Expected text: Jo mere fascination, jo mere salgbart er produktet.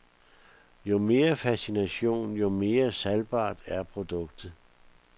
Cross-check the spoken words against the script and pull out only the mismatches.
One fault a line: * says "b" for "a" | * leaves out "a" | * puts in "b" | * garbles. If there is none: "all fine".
all fine